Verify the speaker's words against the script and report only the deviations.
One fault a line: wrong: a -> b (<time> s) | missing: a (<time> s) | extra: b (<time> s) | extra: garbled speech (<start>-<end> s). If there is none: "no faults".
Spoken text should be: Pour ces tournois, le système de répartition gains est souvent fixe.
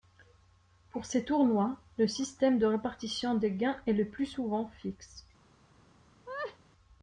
extra: des (3.4 s)
extra: le plus (3.9 s)